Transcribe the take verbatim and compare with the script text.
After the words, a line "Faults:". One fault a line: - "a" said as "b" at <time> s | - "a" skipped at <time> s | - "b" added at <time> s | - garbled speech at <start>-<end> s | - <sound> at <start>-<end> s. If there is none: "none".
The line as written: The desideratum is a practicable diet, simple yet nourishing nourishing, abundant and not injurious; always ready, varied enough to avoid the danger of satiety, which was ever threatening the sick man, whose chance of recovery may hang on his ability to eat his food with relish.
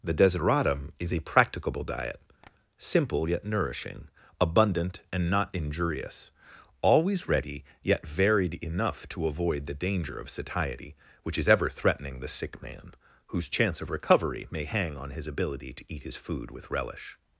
The desideratum is a practicable diet, simple yet nourishing, abundant and not injurious; always ready, yet varied enough to avoid the danger of satiety, which is ever threatening the sick man, whose chance of recovery may hang on his ability to eat his food with relish.
Faults:
- tap at 2.4-2.5 s
- "nourishing" skipped at 4.1 s
- "yet" added at 7.8 s
- "was" said as "is" at 11.4 s